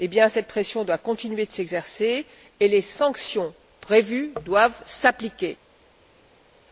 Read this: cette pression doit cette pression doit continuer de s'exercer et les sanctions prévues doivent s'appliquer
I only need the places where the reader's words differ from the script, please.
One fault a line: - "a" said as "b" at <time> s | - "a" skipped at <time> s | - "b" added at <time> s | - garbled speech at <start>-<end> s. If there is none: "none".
- "cette pression doit" skipped at 1.0 s